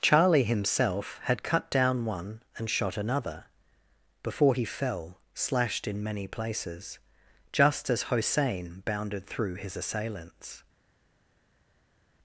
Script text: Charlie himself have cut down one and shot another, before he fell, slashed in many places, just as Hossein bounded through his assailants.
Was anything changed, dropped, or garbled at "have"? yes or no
yes